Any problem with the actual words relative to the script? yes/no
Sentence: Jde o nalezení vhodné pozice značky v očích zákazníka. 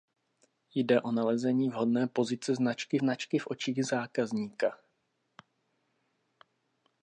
yes